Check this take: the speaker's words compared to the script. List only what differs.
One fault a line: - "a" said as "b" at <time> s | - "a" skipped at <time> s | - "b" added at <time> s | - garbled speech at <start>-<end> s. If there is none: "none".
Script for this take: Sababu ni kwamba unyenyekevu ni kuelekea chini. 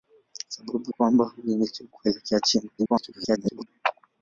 - "ni" skipped at 0.9 s
- "ni" skipped at 1.9 s
- garbled speech at 2.8-3.7 s